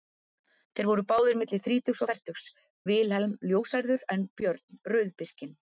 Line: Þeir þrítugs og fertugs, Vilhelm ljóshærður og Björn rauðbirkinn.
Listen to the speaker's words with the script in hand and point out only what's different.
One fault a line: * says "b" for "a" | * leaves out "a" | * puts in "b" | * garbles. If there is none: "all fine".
* puts in "voru báðir milli"
* says "en" for "og"